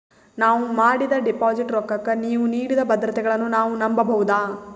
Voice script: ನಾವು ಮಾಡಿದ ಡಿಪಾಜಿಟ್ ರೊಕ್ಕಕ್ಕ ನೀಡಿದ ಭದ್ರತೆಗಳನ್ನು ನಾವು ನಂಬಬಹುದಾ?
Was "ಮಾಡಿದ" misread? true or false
false